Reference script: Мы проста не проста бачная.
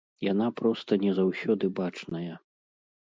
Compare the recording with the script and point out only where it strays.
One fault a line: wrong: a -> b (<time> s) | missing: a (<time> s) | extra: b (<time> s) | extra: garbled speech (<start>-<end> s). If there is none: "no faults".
wrong: Мы -> Яна (0.3 s)
wrong: проста -> заўсёды (1.2 s)